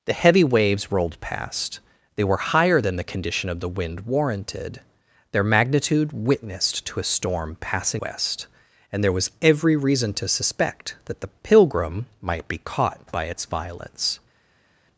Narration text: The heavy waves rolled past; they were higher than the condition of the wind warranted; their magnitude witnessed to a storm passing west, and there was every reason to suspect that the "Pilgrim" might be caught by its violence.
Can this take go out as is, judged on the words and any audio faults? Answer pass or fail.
pass